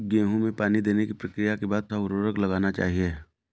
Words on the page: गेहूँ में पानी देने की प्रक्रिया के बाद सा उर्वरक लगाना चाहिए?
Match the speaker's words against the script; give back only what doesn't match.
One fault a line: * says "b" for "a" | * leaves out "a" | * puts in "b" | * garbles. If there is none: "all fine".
all fine